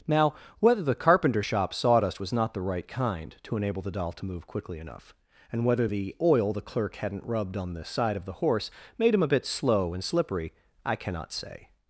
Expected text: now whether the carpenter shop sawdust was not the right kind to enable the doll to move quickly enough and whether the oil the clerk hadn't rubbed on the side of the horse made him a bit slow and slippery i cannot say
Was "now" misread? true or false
false